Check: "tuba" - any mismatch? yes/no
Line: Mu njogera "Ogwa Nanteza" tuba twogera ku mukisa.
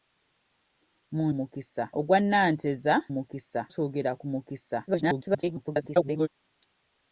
yes